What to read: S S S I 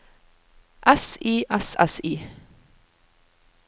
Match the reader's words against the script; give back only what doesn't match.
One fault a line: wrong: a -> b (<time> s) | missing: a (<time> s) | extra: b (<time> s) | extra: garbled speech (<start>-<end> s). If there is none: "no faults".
extra: I (1.2 s)